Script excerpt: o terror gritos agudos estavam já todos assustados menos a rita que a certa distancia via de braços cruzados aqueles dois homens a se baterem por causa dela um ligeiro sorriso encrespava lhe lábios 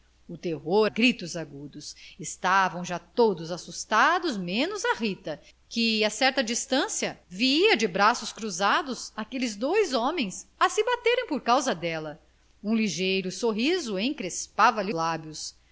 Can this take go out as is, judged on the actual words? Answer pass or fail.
pass